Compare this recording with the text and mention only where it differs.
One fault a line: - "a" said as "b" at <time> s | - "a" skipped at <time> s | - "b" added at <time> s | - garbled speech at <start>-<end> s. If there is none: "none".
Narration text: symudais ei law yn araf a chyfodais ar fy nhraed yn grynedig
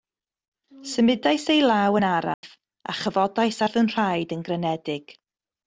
none